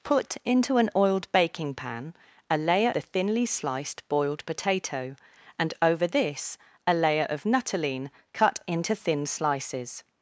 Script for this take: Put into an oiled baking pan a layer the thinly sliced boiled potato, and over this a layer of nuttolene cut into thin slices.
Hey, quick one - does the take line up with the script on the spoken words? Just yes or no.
yes